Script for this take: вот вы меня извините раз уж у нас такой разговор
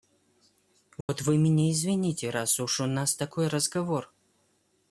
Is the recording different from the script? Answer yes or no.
no